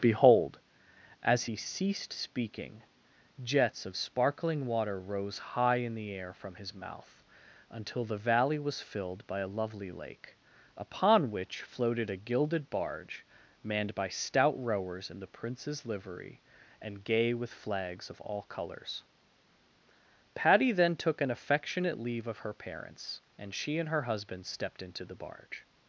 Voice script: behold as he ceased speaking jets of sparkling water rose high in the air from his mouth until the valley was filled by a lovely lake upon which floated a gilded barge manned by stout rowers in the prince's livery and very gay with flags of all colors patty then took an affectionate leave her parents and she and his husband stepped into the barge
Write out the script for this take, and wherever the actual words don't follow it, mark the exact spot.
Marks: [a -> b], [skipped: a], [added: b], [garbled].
behold as he ceased speaking jets of sparkling water rose high in the air from his mouth until the valley was filled by a lovely lake upon which floated a gilded barge manned by stout rowers in the prince's livery and [skipped: very] gay with flags of all colors patty then took an affectionate leave [added: of] her parents and she and [his -> her] husband stepped into the barge